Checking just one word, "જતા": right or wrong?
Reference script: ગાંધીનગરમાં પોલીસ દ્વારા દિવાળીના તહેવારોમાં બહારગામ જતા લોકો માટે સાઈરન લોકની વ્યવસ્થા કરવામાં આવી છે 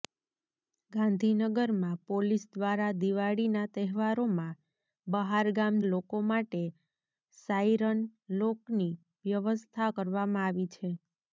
wrong